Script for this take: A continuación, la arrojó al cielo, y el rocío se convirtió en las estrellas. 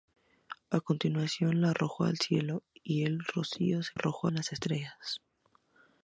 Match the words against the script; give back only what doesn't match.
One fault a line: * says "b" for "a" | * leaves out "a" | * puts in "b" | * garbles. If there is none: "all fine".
* says "arrojó" for "convirtió"